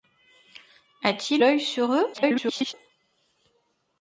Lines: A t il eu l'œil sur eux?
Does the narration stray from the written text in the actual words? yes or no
yes